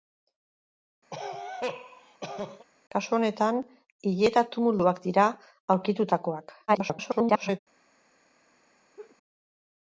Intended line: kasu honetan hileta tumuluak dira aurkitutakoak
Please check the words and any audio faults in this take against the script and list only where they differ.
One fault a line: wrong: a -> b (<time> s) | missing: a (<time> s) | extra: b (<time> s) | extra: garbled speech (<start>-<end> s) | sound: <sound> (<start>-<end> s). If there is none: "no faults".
sound: cough (1.1-2.7 s)
extra: garbled speech (6.7-7.6 s)
sound: laugh (9.0-9.2 s)